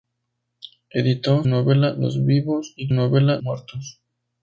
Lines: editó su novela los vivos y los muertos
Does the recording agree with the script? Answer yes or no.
no